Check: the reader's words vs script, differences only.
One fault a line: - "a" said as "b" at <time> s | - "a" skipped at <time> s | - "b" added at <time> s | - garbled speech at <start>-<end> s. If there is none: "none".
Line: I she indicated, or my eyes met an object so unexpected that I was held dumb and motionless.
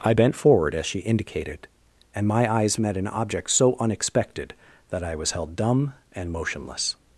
- "bent forward as" added at 0.1 s
- "or" said as "and" at 2.1 s